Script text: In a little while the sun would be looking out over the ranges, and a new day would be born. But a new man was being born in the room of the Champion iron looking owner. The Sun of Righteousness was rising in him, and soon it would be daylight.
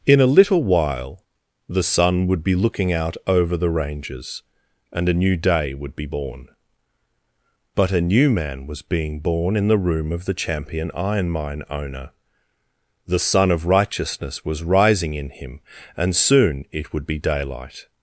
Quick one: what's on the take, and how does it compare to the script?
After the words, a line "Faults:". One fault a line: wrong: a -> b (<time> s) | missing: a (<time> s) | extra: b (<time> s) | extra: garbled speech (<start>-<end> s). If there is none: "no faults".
In a little while the sun would be looking out over the ranges, and a new day would be born. But a new man was being born in the room of the Champion iron mine owner. The Sun of Righteousness was rising in him, and soon it would be daylight.
Faults:
wrong: looking -> mine (11.3 s)